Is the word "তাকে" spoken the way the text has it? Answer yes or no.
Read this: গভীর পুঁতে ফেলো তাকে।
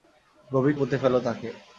yes